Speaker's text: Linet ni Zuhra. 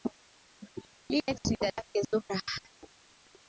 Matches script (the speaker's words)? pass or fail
fail